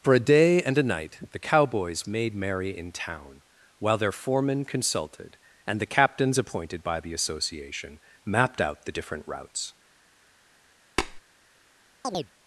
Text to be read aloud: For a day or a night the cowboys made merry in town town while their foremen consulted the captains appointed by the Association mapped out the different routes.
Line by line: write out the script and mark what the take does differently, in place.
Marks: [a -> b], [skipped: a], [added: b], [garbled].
For a day [or -> and] a night the cowboys made merry in town [skipped: town] while their foremen consulted [added: and] the captains appointed by the Association mapped out the different routes.